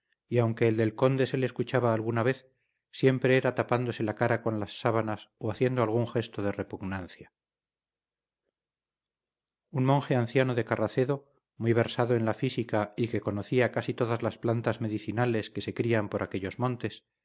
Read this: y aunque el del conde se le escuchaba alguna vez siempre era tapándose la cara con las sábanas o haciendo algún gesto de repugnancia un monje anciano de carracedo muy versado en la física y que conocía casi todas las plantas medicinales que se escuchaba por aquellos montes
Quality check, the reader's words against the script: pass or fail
fail